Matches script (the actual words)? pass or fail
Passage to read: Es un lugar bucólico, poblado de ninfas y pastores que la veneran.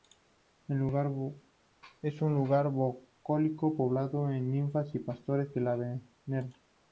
pass